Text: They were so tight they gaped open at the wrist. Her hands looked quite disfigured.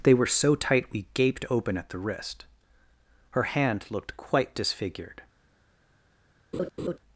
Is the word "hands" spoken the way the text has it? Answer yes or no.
no